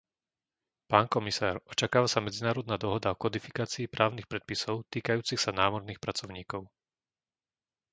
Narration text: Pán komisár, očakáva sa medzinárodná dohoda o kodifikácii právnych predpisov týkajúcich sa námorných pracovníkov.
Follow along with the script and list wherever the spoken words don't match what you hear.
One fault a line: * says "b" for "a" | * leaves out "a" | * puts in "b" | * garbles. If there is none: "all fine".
all fine